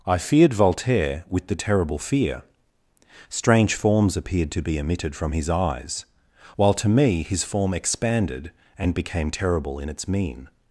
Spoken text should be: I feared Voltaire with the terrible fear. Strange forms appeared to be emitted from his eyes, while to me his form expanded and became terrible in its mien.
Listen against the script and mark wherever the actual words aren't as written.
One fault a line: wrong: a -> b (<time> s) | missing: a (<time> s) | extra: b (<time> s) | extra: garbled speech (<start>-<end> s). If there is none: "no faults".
no faults